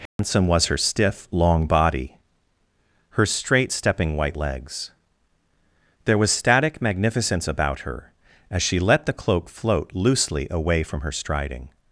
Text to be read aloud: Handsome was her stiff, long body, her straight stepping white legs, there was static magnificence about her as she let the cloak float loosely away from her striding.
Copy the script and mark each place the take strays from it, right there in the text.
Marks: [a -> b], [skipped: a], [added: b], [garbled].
Handsome was her stiff, long body, her straight stepping white legs, there was static magnificence about her as she let the cloak float loosely away from her striding.